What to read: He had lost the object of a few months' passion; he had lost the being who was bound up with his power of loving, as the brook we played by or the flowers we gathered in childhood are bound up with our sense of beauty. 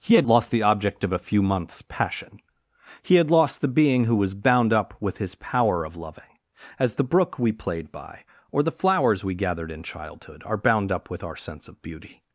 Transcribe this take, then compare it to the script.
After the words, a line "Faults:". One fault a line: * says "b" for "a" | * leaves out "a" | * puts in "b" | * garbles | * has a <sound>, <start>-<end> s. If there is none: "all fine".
He had lost the object of a few months' passion; he had lost the being who was bound up with his power of loving, as the brook we played by or the flowers we gathered in childhood are bound up with our sense of beauty.
Faults:
all fine